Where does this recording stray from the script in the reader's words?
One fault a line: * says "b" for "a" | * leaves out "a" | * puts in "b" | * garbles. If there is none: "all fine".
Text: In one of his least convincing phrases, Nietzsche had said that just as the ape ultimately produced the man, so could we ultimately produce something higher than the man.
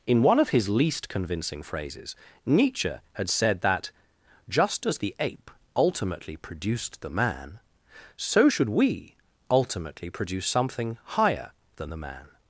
* says "should" for "could"